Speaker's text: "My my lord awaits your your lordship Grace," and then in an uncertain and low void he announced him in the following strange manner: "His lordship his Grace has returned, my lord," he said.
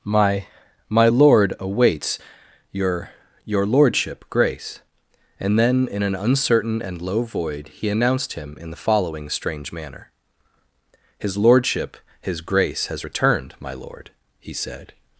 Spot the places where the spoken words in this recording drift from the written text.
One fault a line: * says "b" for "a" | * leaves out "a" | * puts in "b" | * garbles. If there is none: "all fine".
all fine